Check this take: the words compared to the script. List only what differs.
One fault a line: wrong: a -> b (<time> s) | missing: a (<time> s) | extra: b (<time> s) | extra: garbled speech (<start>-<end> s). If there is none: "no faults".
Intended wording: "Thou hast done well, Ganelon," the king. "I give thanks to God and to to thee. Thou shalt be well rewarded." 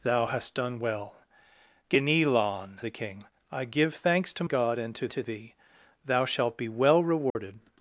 no faults